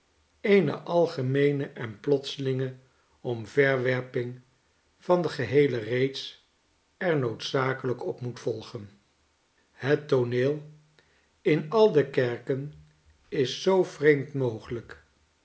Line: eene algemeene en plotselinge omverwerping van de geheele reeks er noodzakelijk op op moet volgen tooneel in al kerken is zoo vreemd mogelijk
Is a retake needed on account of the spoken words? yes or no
yes